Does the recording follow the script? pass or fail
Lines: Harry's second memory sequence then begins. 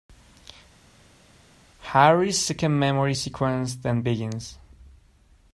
pass